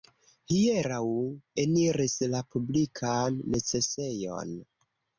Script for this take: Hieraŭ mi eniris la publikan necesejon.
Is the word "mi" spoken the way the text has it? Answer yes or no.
no